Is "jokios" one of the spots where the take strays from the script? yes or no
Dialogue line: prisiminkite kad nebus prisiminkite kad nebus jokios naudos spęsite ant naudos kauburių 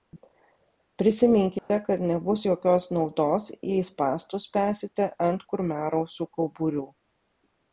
yes